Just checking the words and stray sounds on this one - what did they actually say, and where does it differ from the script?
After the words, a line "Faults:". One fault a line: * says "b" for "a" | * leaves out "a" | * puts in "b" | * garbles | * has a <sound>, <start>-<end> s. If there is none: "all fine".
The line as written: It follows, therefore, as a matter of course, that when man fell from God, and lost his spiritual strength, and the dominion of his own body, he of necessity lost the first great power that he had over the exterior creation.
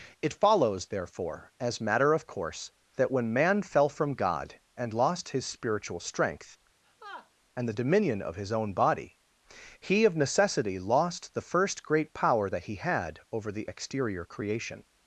It follows, therefore, as matter of course, that when man fell from God, and lost his spiritual strength, and the dominion of his own body, he of necessity lost the first great power that he had over the exterior creation.
Faults:
* leaves out "a"
* has a laugh, 6.8-7.3 s